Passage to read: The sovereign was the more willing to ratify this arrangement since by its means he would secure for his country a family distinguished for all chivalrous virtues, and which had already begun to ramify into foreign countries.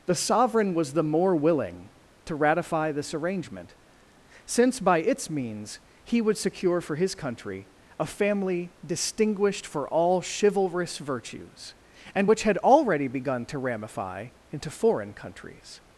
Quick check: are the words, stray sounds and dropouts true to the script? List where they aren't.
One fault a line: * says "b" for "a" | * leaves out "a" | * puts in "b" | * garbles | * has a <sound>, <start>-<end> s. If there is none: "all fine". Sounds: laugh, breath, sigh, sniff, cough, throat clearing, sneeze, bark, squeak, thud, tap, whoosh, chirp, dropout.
all fine